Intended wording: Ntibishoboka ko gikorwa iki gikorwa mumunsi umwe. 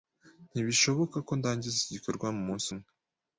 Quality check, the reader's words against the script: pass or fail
fail